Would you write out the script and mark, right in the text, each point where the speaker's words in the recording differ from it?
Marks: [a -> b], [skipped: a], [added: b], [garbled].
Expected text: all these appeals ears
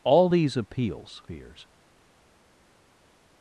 all these appeals ears